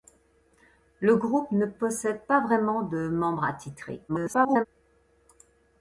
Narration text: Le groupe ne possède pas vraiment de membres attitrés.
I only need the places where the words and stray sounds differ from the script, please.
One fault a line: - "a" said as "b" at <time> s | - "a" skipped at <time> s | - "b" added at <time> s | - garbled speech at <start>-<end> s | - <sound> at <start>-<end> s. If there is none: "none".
- garbled speech at 4.1-4.7 s